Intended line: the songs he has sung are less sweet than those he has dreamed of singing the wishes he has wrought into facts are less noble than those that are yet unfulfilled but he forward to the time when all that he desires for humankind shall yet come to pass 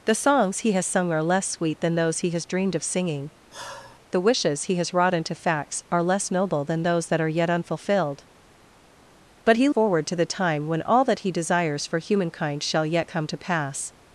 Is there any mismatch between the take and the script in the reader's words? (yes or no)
no